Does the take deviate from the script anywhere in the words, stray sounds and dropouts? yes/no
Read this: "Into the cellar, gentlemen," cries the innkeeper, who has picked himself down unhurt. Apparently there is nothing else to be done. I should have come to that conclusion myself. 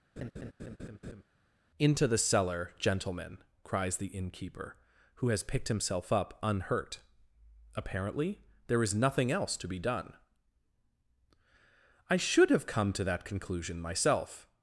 yes